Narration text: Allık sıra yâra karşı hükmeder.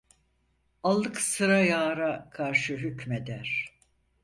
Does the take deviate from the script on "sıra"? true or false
false